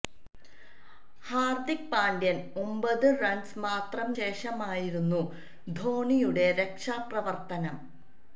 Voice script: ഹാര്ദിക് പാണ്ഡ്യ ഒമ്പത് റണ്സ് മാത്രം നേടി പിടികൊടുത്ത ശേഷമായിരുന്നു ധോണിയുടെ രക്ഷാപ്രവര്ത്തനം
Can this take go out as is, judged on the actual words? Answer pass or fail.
fail